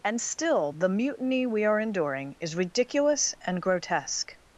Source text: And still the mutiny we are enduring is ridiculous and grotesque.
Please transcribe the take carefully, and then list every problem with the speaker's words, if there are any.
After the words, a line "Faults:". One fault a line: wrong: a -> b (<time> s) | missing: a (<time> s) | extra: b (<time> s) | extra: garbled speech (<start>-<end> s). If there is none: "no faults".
And still the mutiny we are enduring is ridiculous and grotesque.
Faults:
no faults